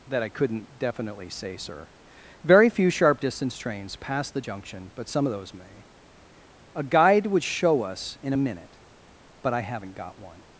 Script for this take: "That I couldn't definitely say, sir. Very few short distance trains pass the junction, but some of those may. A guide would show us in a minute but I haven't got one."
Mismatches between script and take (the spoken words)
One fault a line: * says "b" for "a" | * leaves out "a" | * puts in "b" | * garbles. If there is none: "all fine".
* says "sharp" for "short"